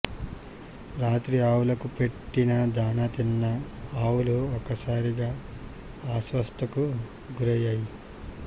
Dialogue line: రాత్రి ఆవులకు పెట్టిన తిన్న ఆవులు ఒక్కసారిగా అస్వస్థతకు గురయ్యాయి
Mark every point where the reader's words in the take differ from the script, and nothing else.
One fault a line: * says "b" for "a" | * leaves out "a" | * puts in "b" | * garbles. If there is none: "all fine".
* puts in "దాణా"